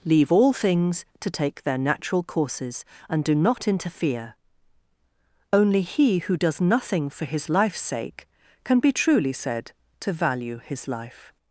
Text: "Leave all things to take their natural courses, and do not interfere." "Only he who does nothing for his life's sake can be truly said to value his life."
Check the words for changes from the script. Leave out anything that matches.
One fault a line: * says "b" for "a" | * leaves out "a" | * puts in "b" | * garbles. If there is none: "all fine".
all fine